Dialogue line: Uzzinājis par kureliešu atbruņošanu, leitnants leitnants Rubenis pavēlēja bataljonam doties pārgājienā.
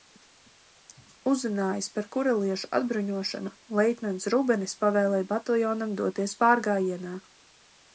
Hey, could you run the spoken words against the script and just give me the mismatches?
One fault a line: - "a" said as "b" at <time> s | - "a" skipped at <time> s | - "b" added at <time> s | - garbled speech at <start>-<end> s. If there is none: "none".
- "leitnants" skipped at 4.3 s